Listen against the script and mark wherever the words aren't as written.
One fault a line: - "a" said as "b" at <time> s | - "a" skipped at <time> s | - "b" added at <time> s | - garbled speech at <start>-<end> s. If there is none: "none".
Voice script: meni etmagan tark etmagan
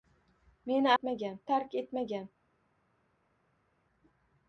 none